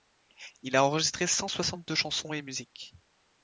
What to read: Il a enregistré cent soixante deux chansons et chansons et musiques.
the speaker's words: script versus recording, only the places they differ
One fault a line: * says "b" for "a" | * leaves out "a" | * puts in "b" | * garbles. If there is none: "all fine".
* leaves out "chansons et"